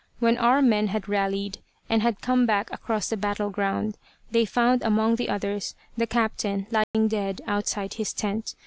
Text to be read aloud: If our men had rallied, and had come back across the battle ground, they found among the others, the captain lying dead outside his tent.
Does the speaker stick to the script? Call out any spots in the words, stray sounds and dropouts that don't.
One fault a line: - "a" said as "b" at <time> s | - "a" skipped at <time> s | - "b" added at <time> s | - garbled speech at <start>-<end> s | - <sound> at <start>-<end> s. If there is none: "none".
- "If" said as "When" at 0.2 s
- dropout at 6.8-6.9 s